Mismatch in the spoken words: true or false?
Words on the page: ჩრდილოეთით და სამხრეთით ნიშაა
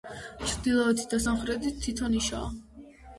true